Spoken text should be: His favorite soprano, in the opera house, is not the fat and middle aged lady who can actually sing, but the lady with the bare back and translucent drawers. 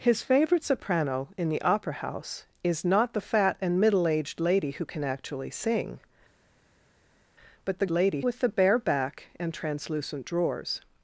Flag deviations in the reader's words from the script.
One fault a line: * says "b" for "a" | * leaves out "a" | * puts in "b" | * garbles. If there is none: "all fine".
all fine